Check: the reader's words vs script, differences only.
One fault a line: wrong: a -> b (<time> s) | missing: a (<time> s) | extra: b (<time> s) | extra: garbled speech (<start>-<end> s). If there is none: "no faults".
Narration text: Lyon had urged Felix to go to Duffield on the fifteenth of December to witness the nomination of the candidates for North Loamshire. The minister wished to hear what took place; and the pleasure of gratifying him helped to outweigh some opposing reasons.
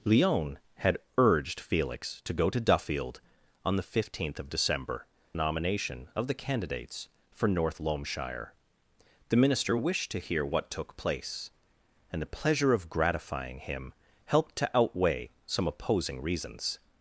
missing: to witness the (5.0 s)